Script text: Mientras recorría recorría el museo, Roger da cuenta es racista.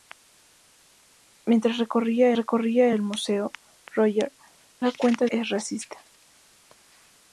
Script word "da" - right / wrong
right